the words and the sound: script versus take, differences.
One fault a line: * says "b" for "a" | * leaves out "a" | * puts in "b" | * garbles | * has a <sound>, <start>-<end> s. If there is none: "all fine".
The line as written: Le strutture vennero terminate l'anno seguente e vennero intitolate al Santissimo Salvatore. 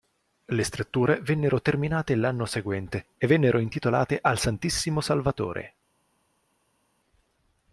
all fine